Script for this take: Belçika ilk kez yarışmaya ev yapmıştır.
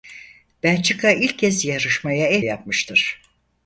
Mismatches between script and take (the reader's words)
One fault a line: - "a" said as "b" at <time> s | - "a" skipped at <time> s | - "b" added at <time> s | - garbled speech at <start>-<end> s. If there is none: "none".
none